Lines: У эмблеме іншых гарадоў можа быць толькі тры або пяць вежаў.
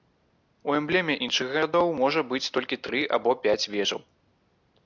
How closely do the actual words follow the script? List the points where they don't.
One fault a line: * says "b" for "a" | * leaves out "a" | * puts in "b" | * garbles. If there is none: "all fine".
all fine